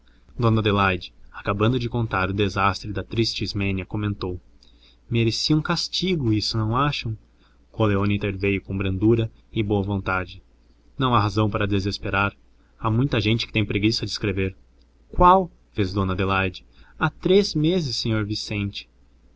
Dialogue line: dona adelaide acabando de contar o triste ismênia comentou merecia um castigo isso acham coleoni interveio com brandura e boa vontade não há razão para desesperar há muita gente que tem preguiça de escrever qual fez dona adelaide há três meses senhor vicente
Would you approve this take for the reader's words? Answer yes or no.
no